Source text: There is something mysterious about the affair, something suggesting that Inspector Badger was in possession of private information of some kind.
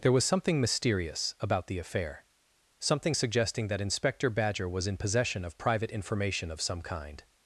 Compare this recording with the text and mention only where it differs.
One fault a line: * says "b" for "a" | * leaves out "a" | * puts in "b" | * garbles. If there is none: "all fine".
* says "was" for "is"